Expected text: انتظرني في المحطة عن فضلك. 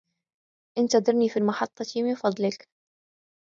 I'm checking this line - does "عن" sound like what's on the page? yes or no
no